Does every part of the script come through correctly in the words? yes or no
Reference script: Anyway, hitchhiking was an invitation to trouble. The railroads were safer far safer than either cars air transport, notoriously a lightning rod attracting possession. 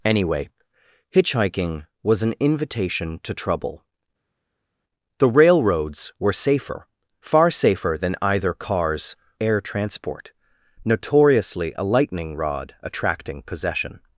yes